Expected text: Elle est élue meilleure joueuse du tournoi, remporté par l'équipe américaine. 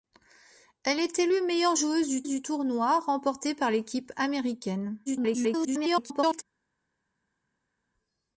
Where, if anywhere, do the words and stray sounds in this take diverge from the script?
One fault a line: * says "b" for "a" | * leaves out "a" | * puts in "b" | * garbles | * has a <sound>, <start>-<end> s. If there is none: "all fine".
* puts in "du"
* garbles